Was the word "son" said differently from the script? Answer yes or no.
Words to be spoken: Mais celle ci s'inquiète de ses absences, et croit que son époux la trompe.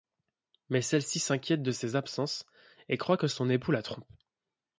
no